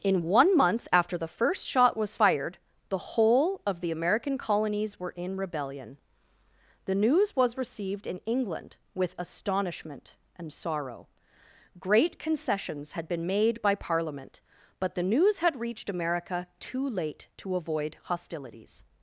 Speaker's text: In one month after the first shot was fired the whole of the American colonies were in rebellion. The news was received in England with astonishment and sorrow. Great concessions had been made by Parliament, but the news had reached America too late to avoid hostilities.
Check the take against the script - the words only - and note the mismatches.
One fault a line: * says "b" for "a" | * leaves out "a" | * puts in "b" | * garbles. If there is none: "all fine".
all fine